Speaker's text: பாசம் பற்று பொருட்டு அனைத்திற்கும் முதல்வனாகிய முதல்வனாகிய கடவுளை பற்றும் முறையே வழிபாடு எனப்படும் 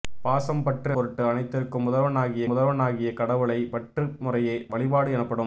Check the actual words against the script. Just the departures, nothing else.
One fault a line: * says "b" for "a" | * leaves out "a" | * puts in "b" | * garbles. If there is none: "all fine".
all fine